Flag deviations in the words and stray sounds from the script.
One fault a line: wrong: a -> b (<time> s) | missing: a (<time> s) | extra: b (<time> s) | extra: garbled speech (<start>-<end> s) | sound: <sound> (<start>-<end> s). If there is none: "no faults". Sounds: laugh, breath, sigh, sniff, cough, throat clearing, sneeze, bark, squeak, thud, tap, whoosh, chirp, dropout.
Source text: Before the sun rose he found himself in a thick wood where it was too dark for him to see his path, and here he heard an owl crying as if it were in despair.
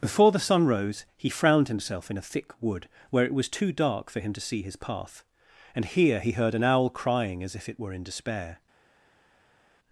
wrong: found -> frowned (1.3 s)